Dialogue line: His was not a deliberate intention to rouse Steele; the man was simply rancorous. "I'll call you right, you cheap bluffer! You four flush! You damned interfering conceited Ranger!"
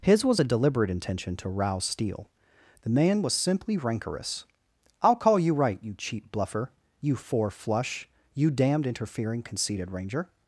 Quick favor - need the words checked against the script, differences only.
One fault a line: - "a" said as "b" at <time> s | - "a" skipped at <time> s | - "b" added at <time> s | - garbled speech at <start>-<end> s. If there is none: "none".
- "not" skipped at 0.4 s